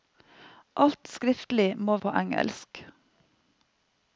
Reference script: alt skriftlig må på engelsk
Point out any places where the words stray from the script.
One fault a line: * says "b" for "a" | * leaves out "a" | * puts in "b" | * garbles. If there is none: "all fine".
all fine